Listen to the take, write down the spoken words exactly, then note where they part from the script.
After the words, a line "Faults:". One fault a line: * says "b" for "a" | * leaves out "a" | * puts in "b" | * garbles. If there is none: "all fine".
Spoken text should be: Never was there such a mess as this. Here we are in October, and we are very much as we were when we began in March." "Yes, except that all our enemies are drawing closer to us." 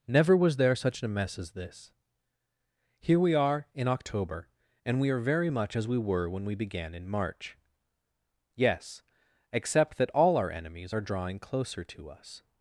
Never was there such a mess as this. Here we are in October, and we are very much as we were when we began in March." "Yes, except that all our enemies are drawing closer to us."
Faults:
all fine